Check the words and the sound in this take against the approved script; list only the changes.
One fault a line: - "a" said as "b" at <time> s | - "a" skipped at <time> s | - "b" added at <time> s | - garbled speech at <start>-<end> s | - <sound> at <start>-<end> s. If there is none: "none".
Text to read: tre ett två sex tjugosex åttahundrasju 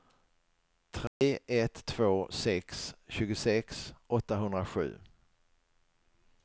- dropout at 1.1-1.2 s